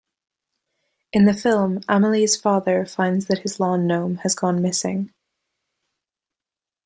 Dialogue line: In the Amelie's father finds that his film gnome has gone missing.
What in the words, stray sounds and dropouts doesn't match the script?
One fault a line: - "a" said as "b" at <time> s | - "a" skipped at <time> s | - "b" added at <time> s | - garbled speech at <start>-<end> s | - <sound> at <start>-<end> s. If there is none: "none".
- "film" added at 1.4 s
- "film" said as "lawn" at 3.6 s